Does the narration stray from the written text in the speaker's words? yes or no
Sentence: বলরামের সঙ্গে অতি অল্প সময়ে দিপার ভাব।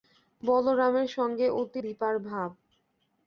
yes